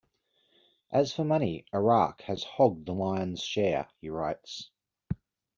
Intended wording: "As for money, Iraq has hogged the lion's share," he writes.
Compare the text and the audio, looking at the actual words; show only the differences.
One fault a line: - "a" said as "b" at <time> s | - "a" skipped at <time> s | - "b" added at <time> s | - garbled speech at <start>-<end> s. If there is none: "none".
none